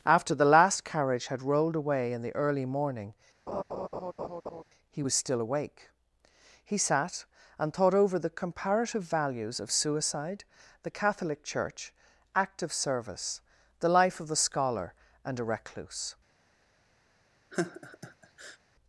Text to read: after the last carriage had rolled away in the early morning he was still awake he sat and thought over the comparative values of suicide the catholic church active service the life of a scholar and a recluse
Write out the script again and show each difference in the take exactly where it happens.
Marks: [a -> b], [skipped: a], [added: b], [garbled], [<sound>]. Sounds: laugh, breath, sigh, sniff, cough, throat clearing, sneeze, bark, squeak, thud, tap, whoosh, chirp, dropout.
after the last carriage had rolled away in the early morning [laugh] he was still awake he sat and thought over the comparative values of suicide the catholic church active service the life of [a -> the] scholar and a recluse [laugh]